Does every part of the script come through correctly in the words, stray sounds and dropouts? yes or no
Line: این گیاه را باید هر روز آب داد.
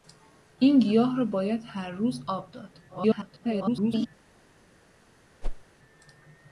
no